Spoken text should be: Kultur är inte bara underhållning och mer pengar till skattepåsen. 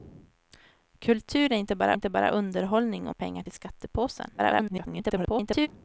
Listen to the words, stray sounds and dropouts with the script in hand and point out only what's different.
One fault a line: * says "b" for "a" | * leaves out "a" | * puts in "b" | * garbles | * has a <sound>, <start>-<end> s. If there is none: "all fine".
* puts in "inte bara"
* leaves out "mer"
* garbles